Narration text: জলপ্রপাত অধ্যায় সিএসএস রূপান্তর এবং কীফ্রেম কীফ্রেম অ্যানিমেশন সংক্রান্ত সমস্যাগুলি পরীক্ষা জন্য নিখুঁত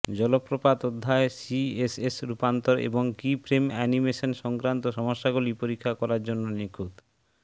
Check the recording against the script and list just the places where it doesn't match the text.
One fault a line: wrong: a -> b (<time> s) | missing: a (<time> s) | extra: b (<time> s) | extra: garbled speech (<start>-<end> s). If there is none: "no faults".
missing: কীফ্রেম (3.6 s)
extra: করার (6.0 s)